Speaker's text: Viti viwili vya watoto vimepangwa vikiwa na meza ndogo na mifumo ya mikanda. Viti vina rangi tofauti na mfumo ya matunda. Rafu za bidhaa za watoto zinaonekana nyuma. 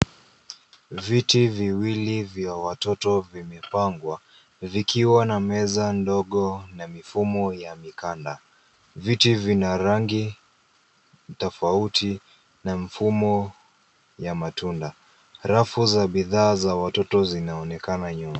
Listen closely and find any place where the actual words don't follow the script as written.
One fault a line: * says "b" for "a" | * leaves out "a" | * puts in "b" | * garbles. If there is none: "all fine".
all fine